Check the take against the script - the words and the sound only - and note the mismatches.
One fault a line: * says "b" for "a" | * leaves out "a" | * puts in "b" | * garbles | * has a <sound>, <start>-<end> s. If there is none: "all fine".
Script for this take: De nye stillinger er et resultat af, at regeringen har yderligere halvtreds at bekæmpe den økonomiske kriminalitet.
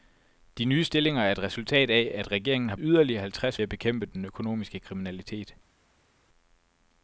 all fine